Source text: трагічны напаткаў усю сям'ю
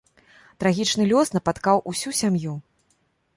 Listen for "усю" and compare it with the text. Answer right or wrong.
right